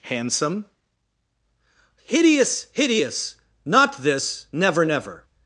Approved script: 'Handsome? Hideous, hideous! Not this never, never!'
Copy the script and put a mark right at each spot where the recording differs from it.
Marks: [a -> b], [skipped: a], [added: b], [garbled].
'Handsome? Hideous, hideous! Not this never, never!'